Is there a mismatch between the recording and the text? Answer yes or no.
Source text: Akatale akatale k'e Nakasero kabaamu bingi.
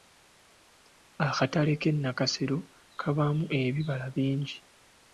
yes